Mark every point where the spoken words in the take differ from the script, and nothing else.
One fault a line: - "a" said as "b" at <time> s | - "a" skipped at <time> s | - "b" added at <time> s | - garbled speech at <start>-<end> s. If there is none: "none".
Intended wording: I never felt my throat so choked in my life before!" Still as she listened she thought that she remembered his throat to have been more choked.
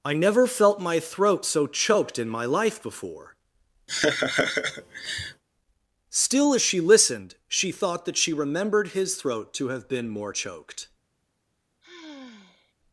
none